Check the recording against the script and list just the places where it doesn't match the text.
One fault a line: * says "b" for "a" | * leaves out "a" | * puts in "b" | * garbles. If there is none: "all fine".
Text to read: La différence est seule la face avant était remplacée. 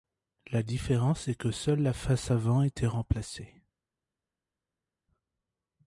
* puts in "que"